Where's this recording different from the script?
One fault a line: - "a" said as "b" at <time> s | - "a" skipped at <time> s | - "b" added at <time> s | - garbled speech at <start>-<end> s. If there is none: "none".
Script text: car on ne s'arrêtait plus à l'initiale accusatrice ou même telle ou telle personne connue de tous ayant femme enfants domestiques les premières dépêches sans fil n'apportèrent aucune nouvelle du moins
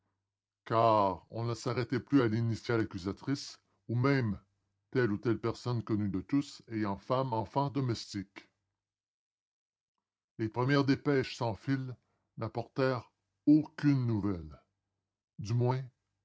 none